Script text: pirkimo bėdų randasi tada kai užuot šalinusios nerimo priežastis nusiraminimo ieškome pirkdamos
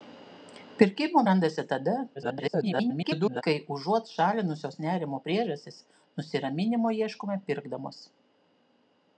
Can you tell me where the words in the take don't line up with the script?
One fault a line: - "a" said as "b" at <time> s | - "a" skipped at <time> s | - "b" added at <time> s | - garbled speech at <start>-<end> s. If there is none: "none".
- "bėdų" skipped at 1.2 s
- garbled speech at 2.1-3.4 s